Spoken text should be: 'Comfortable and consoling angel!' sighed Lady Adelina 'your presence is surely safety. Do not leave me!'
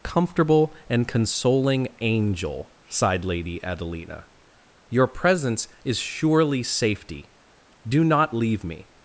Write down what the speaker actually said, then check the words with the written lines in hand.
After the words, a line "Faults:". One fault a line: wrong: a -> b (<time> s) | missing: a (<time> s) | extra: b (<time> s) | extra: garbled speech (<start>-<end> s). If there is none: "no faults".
'Comfortable and consoling angel!' sighed Lady Adelina 'your presence is surely safety. Do not leave me!'
Faults:
no faults